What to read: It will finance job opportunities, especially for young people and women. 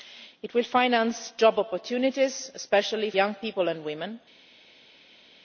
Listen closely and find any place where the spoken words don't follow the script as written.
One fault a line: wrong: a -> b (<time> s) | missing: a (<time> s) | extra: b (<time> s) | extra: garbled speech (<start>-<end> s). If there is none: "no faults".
missing: for (3.1 s)